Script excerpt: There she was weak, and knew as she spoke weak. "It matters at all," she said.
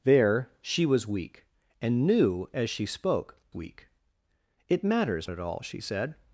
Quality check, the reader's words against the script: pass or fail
pass